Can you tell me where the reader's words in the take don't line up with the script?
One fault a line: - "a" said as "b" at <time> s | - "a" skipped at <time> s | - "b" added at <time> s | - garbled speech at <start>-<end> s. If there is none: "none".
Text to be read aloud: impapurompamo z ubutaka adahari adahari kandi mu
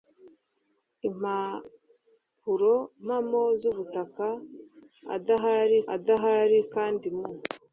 none